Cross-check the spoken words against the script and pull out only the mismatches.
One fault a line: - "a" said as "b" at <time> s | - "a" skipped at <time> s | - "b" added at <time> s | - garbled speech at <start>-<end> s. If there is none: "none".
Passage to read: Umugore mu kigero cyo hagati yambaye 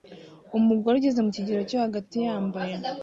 - "ugeze" added at 1.0 s